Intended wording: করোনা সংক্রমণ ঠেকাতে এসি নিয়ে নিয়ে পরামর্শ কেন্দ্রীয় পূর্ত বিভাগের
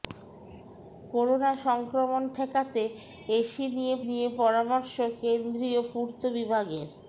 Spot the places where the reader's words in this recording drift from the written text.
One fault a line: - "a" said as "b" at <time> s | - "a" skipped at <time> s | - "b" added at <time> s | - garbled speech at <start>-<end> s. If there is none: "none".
none